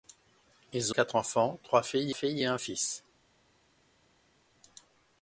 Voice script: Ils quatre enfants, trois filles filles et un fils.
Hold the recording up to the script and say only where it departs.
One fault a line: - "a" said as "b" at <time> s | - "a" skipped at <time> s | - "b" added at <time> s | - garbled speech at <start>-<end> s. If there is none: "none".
none